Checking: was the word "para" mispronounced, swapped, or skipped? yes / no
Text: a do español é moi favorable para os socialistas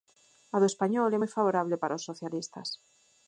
no